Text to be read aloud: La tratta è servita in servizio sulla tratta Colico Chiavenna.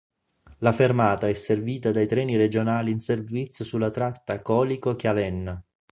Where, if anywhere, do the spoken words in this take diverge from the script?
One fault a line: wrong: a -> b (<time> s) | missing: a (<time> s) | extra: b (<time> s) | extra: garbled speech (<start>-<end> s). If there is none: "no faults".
wrong: tratta -> fermata (0.7 s)
extra: dai treni regionali (1.9 s)